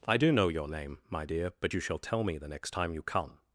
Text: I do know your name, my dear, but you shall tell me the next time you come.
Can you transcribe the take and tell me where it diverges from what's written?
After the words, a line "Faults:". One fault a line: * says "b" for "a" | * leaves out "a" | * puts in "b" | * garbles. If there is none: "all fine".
I do know your name, my dear, but you shall tell me the next time you come.
Faults:
all fine